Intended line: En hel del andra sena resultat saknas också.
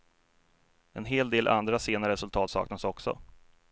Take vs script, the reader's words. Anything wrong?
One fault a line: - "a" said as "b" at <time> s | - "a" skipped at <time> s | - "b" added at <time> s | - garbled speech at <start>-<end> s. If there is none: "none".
none